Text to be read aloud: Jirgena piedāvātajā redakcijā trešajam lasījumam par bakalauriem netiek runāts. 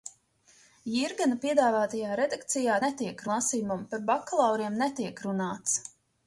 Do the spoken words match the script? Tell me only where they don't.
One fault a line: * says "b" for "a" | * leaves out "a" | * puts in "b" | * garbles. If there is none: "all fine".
* says "netiek" for "trešajam"